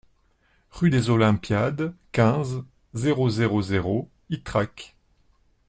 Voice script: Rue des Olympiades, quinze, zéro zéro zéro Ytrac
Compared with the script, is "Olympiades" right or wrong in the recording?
right